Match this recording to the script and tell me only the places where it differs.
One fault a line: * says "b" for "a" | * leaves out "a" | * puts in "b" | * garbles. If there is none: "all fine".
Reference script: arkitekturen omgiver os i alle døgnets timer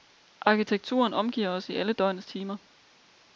all fine